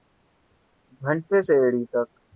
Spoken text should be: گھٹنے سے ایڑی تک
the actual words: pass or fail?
pass